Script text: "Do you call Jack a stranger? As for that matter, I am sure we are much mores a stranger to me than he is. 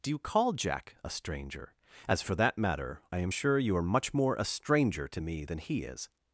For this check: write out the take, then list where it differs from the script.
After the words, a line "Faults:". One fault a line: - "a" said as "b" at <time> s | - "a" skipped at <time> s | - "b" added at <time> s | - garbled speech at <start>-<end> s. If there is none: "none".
"Do you call Jack a stranger? As for that matter, I am sure you are much more a stranger to me than he is.
Faults:
- "we" said as "you" at 3.6 s
- "mores" said as "more" at 4.1 s